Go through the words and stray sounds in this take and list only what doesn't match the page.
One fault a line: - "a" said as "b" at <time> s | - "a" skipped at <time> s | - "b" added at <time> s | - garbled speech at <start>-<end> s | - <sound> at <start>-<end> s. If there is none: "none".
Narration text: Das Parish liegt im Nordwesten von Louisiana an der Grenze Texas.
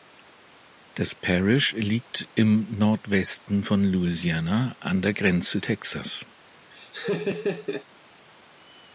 - laugh at 6.7-7.9 s